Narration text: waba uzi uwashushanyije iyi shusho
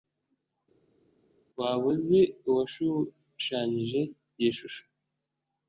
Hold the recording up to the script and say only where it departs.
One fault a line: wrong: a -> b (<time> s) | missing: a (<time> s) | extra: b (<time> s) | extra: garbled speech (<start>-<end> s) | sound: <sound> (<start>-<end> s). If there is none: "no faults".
no faults